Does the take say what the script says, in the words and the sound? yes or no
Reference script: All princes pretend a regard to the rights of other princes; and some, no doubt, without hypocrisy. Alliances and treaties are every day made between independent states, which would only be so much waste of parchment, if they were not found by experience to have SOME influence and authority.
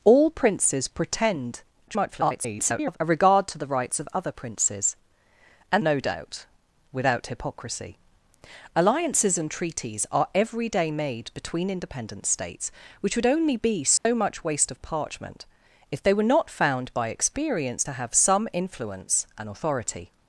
no